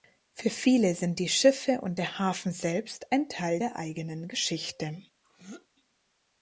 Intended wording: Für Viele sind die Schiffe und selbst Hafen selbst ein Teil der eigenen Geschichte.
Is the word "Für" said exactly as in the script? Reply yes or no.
yes